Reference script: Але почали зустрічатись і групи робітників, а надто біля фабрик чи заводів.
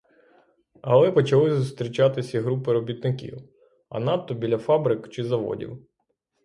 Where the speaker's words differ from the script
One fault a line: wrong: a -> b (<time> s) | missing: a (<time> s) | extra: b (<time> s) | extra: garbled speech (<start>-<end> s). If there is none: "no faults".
no faults